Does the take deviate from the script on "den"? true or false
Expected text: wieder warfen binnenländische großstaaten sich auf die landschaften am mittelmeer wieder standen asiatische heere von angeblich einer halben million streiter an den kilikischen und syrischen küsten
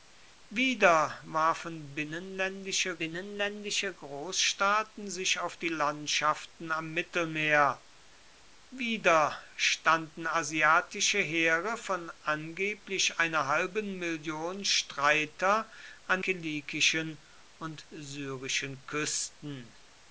true